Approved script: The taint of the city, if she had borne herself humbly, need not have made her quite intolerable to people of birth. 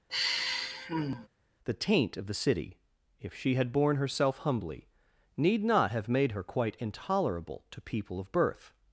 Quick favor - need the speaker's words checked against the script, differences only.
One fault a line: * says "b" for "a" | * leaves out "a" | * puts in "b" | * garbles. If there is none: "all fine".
all fine